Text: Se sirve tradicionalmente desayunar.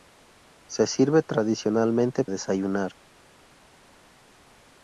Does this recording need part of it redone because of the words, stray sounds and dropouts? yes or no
no